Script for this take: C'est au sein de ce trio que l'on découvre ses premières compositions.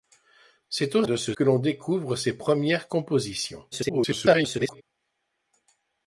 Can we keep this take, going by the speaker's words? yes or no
no